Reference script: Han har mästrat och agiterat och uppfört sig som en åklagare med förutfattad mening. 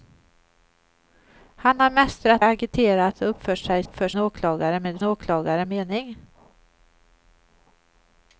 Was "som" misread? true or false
true